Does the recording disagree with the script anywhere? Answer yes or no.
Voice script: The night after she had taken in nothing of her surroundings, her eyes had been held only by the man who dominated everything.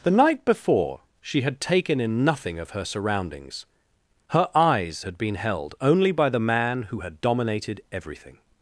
yes